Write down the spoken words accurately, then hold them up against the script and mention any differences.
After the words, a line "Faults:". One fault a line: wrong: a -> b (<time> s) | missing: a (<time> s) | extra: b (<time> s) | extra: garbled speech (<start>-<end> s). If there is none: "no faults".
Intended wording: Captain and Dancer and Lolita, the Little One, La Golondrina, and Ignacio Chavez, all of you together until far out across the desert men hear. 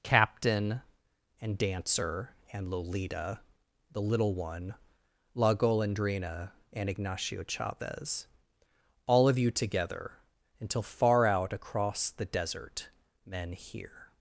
Captain and Dancer and Lolita, the Little One, La Golondrina, and Ignacio Chavez, all of you together until far out across the desert men hear.
Faults:
no faults